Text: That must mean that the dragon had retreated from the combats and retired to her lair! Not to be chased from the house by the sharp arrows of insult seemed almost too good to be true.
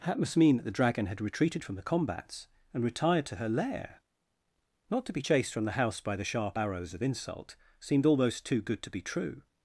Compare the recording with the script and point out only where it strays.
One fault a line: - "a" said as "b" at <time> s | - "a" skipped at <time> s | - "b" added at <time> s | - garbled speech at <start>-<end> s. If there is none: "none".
none